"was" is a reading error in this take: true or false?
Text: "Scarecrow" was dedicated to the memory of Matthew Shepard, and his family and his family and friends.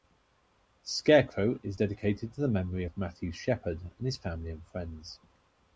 true